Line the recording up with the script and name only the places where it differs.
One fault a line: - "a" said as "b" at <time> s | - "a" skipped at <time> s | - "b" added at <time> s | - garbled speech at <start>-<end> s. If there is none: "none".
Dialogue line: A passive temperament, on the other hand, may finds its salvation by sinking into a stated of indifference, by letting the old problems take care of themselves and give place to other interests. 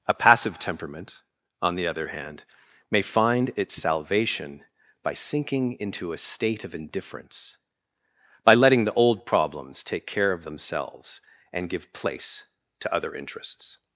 - "finds" said as "find" at 3.0 s
- "stated" said as "state" at 6.2 s